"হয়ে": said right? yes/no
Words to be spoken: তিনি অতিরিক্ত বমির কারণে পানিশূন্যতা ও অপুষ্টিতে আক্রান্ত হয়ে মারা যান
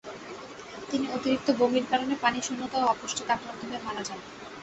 yes